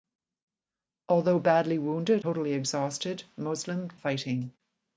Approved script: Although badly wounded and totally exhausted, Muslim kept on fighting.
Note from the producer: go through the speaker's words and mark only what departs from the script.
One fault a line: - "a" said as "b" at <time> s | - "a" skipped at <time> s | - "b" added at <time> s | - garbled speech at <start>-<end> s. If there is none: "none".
- "and" skipped at 2.2 s
- "kept on" skipped at 3.9 s